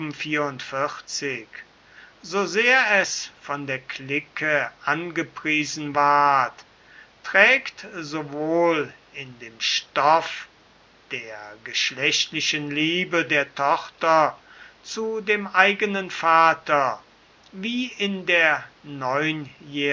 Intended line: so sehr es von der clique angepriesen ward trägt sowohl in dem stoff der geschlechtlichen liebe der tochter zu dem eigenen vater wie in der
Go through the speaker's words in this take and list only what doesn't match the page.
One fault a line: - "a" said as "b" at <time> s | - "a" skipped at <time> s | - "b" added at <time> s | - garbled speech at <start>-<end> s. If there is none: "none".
none